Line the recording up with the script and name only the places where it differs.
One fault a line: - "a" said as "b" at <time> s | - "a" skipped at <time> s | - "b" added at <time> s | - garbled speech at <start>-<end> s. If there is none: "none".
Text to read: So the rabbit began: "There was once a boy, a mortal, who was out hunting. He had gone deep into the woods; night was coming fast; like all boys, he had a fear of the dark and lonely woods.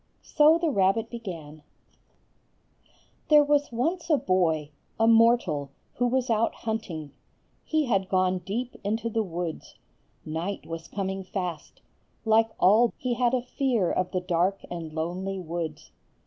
- "boys" skipped at 12.9 s